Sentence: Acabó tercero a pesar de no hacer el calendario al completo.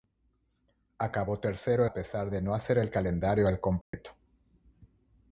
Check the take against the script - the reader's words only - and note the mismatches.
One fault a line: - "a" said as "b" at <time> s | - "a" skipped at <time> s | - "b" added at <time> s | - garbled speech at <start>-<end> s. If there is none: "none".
none